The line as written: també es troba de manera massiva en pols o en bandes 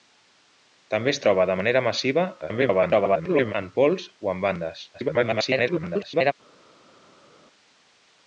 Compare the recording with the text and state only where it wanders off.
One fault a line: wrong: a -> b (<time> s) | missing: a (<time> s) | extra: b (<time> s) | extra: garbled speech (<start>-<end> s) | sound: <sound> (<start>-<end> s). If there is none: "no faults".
extra: garbled speech (2.4-3.5 s)
extra: garbled speech (4.9-6.3 s)